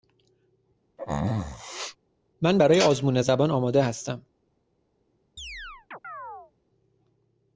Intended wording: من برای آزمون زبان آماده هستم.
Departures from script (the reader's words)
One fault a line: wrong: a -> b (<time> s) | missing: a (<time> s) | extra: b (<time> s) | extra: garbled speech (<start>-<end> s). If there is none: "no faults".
no faults